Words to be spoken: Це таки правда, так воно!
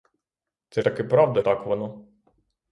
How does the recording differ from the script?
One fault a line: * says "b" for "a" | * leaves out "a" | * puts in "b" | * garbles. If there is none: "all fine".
all fine